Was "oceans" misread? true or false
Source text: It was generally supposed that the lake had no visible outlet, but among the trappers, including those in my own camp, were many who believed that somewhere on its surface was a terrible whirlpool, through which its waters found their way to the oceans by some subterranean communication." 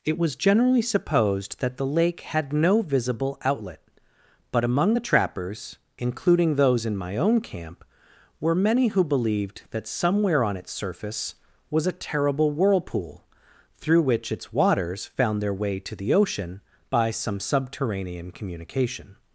true